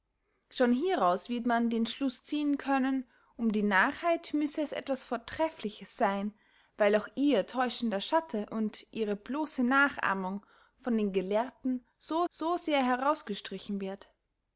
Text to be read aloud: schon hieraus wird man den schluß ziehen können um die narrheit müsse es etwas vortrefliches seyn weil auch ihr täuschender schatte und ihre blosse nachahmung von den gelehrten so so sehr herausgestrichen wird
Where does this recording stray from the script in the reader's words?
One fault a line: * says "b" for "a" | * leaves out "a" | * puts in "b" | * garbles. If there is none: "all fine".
all fine